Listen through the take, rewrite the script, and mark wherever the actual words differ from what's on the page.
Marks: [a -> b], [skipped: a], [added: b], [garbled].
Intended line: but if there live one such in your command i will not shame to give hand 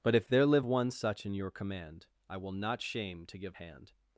but if there live one such in your command i will not shame to give hand